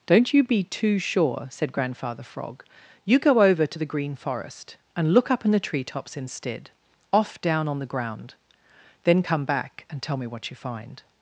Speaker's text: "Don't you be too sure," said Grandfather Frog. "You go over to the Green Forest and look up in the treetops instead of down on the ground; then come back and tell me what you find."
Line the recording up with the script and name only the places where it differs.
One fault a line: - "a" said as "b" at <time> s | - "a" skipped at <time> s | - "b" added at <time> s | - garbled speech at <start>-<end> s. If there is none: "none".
- "of" said as "off" at 7.1 s